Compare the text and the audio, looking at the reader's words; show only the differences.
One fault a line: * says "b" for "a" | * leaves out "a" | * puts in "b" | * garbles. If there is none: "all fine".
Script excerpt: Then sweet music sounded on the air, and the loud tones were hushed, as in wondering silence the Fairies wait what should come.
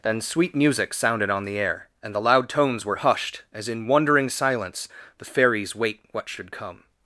all fine